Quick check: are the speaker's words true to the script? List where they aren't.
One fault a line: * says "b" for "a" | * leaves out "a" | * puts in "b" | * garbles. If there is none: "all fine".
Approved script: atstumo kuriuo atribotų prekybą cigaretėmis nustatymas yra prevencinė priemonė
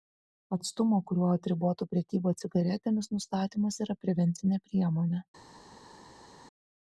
all fine